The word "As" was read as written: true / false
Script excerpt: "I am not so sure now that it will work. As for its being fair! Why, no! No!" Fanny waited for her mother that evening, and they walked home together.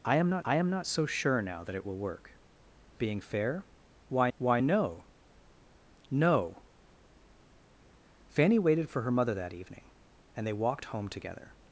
false